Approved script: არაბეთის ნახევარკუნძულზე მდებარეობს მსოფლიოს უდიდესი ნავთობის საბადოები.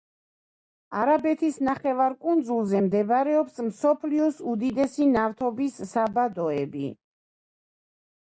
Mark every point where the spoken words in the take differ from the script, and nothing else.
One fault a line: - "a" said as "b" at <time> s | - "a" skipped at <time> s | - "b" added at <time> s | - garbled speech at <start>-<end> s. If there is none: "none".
none